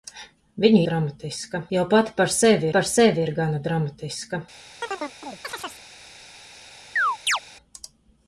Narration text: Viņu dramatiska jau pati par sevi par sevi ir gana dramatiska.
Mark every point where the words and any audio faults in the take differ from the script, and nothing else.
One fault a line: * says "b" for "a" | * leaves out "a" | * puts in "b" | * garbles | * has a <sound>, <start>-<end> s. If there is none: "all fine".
* has a chirp, 4.8-5.8 s
* has a chirp, 7.0-7.4 s